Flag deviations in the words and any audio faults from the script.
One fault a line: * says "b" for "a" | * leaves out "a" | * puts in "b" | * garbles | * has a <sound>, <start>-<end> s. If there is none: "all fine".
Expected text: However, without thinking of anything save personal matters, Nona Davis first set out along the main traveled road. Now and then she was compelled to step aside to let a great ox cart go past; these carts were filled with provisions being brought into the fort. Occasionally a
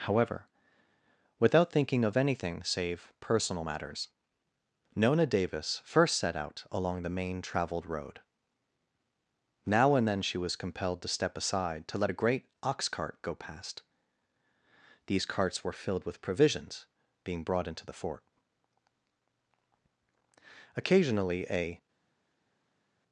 all fine